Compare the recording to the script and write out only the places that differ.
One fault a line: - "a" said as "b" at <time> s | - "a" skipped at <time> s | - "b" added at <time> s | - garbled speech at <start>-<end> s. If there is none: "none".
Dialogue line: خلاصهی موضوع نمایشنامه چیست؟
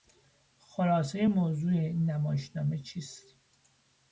- "این" added at 1.7 s